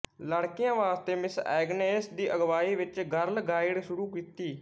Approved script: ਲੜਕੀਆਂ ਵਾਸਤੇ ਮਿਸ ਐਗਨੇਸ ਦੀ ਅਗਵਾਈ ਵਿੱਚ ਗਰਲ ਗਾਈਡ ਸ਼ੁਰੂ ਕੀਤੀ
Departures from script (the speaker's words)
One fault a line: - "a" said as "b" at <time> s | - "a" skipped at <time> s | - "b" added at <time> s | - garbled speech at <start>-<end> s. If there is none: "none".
none